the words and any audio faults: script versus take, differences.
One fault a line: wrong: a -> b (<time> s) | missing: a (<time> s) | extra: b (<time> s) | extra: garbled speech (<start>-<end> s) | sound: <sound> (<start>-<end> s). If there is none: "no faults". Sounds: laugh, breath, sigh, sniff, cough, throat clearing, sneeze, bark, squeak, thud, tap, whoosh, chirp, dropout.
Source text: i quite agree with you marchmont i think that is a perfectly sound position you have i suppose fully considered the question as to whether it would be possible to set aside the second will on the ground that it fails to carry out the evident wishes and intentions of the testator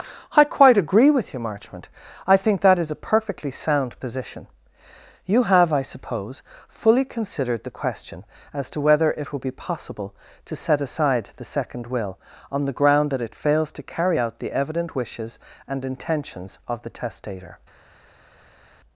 wrong: would -> will (9.3 s)